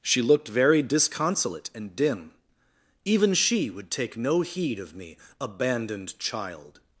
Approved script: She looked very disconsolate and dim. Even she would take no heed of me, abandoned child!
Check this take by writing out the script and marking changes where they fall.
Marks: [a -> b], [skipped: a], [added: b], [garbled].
She looked very disconsolate and dim. Even she would take no heed of me, abandoned child!